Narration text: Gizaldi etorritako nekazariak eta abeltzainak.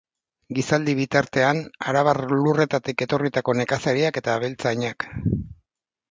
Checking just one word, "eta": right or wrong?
right